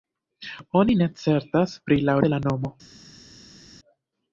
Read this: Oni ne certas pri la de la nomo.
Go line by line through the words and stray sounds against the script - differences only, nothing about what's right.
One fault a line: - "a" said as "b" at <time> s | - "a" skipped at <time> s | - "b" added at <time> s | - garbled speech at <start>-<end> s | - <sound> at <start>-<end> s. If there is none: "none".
none